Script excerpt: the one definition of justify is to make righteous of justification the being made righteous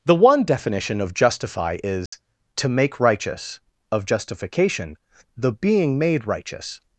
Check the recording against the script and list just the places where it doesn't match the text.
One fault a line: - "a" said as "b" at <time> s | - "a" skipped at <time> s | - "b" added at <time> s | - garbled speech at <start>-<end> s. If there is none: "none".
none